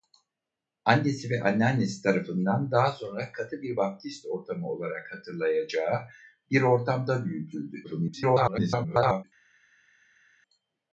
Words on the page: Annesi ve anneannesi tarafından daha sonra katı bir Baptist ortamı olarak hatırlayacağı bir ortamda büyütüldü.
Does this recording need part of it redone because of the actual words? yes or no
yes